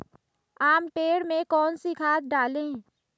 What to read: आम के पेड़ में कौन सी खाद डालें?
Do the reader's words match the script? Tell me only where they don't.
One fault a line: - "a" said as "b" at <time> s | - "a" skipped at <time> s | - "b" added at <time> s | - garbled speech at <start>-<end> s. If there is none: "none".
- "के" skipped at 0.9 s